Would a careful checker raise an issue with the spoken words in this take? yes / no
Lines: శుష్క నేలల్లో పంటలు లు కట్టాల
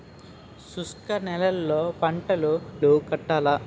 no